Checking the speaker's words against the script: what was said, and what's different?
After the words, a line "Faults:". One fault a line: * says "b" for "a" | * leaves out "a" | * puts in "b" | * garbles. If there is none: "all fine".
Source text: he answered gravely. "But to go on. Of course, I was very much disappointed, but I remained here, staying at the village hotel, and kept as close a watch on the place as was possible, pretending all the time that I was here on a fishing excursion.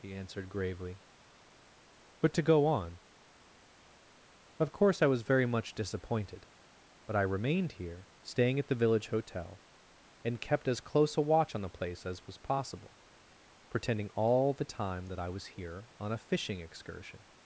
he answered gravely. "But to go on. Of course, I was very much disappointed, but I remained here, staying at the village hotel, and kept as close a watch on the place as was possible, pretending all the time that I was here on a fishing excursion.
Faults:
all fine